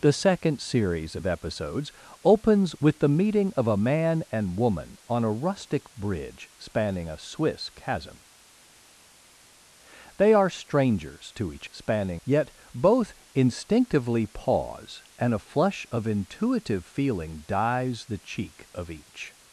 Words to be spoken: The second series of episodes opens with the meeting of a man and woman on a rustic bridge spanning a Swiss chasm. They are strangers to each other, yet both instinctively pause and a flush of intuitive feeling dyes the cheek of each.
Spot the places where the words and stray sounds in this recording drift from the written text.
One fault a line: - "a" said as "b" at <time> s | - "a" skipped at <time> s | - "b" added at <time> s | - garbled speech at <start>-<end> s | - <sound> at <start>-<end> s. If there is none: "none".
- "other" said as "spanning" at 11.7 s